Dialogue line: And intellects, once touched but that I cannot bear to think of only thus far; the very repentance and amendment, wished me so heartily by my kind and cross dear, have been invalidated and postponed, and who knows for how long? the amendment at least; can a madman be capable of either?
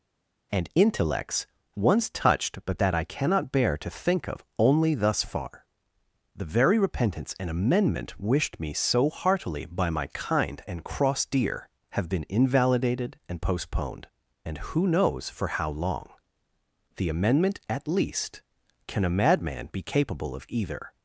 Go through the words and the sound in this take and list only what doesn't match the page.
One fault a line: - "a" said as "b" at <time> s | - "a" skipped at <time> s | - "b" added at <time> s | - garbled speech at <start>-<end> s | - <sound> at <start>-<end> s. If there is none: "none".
none